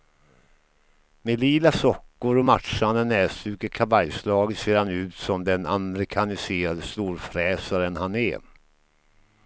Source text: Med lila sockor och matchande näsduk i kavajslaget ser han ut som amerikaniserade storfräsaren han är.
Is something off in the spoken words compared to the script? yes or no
yes